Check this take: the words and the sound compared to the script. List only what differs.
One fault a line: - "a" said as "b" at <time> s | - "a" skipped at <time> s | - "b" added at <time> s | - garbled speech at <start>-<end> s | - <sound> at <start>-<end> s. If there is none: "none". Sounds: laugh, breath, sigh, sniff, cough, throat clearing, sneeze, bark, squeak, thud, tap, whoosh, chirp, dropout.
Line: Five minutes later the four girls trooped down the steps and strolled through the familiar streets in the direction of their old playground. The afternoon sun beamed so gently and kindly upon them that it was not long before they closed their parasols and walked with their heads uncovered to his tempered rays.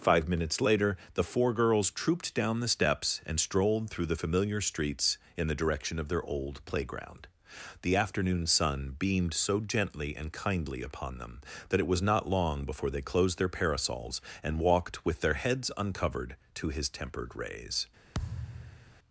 - thud at 18.1-19.0 s